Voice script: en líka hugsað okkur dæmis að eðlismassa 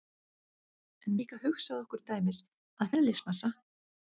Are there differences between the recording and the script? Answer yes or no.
no